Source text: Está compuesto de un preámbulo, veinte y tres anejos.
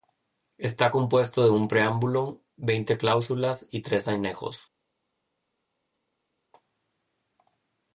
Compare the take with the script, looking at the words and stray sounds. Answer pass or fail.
fail